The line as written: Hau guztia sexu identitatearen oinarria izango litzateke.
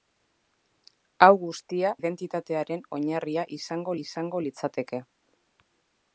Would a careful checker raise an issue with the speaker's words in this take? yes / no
yes